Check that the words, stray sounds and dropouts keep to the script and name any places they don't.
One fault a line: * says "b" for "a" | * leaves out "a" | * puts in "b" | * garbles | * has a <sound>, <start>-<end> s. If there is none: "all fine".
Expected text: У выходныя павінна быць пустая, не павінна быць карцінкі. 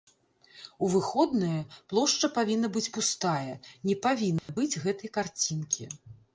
* puts in "плошча"
* has a dropout, 4.4-4.5 s
* puts in "гэтай"